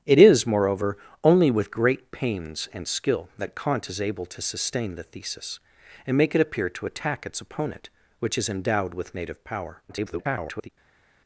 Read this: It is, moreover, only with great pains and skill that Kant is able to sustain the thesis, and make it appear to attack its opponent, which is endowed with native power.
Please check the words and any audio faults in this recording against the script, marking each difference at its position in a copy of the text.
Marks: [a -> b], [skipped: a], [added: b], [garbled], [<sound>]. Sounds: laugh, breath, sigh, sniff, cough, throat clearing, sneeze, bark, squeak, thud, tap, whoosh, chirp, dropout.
It is, moreover, only with great pains and skill that Kant is able to sustain the thesis, and make it appear to attack its opponent, which is endowed with native power. [garbled]